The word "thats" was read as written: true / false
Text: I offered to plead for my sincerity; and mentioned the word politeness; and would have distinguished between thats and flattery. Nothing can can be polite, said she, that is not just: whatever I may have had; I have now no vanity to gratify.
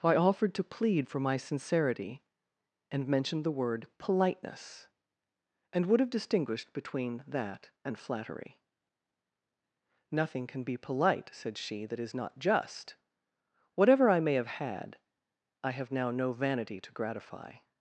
false